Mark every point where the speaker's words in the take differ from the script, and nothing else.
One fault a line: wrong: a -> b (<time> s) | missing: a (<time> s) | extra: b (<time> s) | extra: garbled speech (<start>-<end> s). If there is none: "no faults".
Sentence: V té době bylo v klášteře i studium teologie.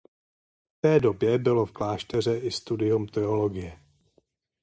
no faults